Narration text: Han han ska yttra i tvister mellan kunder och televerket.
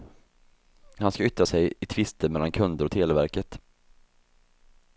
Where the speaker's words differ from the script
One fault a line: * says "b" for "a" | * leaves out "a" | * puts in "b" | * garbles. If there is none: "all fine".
* leaves out "han"
* puts in "sig"